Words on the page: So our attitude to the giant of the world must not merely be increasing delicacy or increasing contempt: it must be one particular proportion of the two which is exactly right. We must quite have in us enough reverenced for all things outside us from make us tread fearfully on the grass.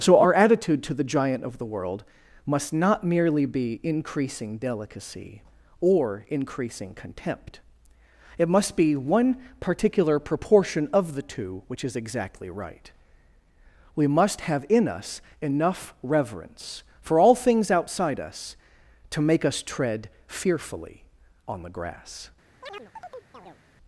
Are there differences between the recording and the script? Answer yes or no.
yes